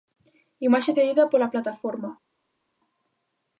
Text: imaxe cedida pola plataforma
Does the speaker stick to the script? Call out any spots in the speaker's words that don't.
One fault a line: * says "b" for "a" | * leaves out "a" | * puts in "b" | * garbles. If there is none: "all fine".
all fine